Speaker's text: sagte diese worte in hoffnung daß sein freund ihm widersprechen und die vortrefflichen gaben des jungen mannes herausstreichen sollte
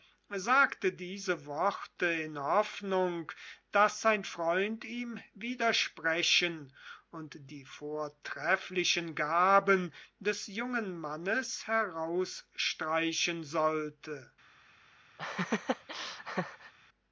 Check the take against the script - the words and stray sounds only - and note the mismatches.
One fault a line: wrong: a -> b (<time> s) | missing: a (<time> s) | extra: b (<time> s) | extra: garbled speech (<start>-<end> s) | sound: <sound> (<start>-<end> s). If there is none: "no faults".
sound: laugh (15.2-16.7 s)